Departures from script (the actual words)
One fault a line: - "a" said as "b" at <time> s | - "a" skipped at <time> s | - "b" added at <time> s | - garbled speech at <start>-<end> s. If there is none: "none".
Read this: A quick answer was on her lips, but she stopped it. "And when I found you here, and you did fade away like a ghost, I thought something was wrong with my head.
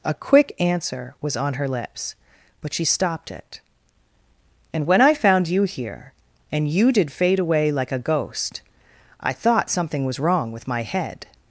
none